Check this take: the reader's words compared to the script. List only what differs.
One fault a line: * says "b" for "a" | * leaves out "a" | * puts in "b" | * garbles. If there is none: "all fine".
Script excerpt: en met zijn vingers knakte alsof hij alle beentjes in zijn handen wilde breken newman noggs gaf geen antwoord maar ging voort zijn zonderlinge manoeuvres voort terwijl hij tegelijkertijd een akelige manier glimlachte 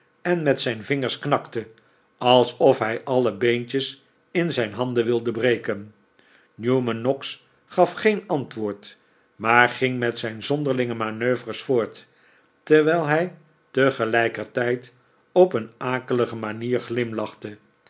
* says "met" for "voort"
* puts in "op"